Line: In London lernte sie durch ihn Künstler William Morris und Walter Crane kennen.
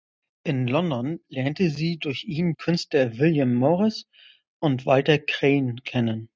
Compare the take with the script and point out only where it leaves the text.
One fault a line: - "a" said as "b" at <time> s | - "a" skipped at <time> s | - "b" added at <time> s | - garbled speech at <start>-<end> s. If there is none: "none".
none